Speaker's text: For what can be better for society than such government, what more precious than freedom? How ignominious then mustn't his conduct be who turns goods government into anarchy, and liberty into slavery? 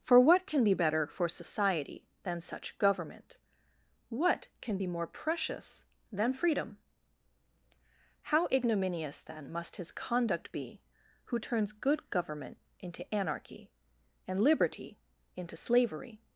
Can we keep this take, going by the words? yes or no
no